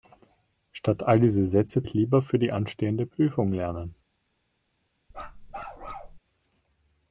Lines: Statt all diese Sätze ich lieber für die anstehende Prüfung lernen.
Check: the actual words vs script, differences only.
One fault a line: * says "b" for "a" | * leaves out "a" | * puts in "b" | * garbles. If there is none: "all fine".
all fine